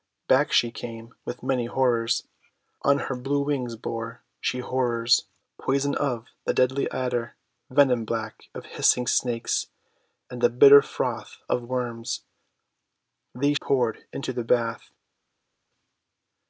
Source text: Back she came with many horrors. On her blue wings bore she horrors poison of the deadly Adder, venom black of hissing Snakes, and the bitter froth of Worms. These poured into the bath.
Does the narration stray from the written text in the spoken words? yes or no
no